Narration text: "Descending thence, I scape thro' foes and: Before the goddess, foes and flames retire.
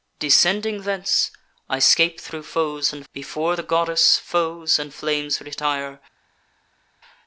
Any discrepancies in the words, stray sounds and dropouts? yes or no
no